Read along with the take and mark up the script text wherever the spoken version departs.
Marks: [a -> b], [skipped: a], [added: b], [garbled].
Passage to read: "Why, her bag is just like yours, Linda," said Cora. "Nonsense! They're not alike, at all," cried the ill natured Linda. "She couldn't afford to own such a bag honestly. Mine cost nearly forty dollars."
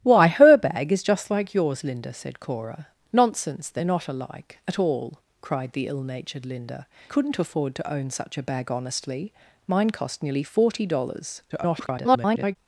"Why, her bag is just like yours, Linda," said Cora. "Nonsense! They're not alike, at all," cried the ill natured Linda. [skipped: "She] couldn't afford to own such a bag honestly. Mine cost nearly forty dollars." [garbled]